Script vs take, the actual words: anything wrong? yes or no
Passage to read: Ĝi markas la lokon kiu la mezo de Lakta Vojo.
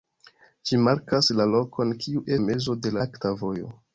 no